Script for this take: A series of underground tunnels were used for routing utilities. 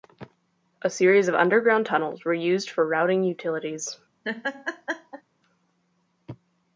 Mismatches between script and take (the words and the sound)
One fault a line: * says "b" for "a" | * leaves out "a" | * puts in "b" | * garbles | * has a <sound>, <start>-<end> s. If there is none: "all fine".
* has a laugh, 4.2-5.2 s